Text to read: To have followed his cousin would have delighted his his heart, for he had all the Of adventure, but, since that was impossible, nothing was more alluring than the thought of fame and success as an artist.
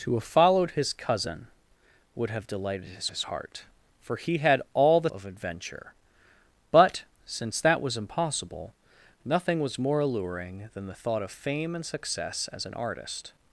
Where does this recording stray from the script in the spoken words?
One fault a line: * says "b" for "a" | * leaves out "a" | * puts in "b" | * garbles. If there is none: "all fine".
all fine